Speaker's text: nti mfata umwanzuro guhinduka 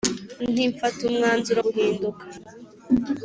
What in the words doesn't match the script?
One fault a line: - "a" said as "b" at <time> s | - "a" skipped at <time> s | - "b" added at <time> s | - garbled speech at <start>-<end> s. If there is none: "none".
none